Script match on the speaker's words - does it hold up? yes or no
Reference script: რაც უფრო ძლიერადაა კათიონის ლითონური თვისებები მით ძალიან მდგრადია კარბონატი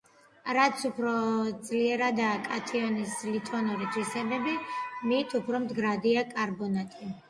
no